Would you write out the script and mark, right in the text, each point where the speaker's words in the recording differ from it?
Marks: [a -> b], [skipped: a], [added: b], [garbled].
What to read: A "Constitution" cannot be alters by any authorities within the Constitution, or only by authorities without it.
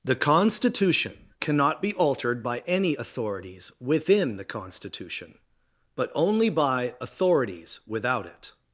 [A -> The] "Constitution" cannot be [alters -> altered] by any authorities within the Constitution, [or -> but] only by authorities without it.